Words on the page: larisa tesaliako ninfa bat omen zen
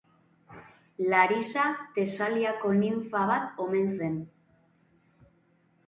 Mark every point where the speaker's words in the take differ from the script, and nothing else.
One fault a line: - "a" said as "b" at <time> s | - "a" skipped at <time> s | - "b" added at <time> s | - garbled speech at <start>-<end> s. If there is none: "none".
none